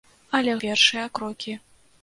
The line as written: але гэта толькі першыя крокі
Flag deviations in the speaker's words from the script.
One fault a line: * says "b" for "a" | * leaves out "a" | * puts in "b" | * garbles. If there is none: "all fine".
* leaves out "гэта толькі"